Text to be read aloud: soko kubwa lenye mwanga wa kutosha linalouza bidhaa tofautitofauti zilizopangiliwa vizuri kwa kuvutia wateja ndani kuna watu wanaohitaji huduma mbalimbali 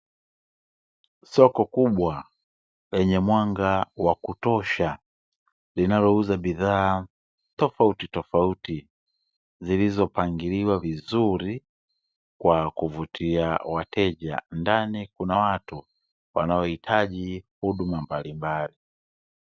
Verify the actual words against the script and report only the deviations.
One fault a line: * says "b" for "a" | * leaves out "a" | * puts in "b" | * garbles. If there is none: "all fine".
all fine